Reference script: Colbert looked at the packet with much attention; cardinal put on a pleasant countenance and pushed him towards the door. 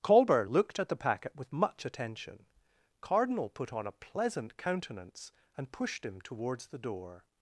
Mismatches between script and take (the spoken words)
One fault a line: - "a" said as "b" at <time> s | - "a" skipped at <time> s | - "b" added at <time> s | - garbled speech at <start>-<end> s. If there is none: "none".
none